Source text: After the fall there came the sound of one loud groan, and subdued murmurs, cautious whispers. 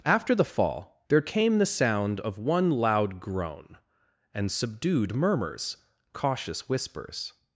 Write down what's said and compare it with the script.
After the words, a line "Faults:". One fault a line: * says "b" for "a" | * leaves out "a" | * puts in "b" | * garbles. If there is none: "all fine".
After the fall there came the sound of one loud groan, and subdued murmurs, cautious whispers.
Faults:
all fine